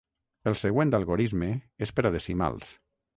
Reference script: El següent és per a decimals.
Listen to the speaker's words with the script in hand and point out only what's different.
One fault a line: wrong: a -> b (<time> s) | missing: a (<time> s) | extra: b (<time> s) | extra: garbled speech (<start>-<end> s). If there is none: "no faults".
extra: algorisme (1.0 s)